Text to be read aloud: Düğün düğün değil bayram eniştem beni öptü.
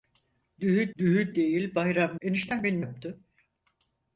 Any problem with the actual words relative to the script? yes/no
no